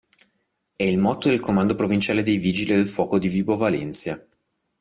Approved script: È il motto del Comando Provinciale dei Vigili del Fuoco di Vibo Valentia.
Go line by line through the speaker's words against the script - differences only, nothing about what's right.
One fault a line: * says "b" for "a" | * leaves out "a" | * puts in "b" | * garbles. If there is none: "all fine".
all fine